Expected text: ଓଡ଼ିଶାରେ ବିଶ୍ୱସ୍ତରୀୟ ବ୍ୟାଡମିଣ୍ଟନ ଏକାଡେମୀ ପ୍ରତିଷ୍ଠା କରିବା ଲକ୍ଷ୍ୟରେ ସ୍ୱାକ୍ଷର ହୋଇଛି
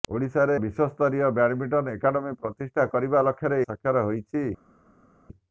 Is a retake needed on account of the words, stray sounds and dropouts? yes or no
no